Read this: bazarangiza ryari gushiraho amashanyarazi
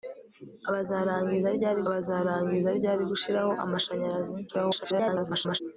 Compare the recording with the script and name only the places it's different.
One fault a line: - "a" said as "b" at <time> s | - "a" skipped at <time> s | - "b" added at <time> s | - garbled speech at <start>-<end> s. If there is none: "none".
- "bazarangiza ryari" added at 1.9 s
- garbled speech at 4.5-5.6 s